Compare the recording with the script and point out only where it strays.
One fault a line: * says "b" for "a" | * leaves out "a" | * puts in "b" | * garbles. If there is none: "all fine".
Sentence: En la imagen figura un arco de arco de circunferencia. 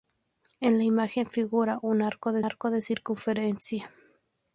all fine